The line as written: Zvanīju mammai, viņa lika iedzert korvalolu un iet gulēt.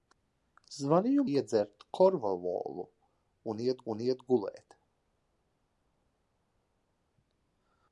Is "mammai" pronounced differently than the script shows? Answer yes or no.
yes